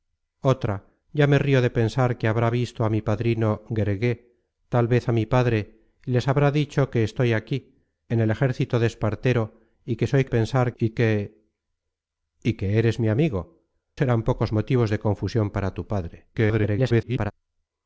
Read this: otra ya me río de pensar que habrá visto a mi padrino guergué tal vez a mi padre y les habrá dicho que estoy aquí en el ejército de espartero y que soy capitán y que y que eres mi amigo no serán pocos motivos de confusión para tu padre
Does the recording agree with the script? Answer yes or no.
no